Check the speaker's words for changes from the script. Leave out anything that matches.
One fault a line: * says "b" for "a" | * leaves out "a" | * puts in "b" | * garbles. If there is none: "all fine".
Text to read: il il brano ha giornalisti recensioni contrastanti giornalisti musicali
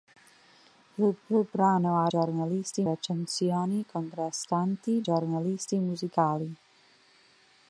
all fine